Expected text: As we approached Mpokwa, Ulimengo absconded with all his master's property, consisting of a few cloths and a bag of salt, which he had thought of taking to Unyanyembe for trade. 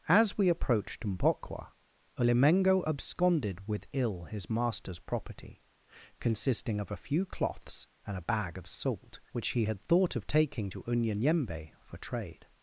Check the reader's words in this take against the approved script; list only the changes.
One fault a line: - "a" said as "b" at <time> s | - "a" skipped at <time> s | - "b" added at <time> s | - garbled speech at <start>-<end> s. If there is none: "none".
- "all" said as "ill" at 3.9 s